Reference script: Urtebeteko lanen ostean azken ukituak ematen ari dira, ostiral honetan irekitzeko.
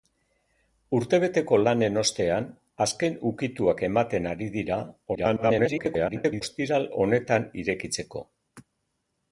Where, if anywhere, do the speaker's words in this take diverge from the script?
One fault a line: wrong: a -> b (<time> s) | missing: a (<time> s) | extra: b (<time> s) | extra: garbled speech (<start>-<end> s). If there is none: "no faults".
extra: garbled speech (5.1-6.4 s)